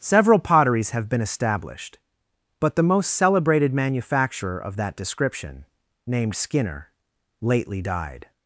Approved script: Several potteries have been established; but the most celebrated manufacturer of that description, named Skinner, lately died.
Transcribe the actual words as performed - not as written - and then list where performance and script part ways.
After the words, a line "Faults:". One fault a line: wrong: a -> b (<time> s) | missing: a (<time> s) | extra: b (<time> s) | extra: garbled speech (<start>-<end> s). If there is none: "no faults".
Several potteries have been established; but the most celebrated manufacturer of that description, named Skinner, lately died.
Faults:
no faults